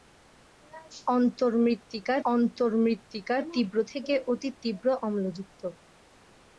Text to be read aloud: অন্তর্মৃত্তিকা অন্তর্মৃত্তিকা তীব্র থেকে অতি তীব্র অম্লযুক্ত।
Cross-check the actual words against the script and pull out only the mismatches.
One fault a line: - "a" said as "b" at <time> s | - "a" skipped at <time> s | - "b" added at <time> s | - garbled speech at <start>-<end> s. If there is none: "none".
none